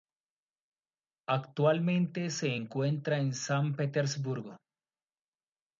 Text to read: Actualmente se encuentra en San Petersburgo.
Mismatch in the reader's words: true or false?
false